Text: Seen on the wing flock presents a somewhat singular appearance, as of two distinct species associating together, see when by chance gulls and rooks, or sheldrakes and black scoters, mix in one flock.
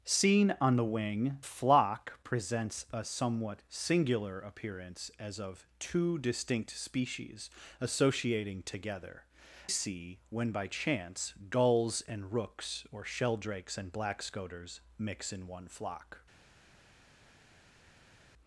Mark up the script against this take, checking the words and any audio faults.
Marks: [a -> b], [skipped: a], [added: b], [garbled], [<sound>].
Seen on the wing flock presents a somewhat singular appearance, as of two distinct species associating together, see when by chance gulls and rooks, or sheldrakes and black scoters, mix in one flock.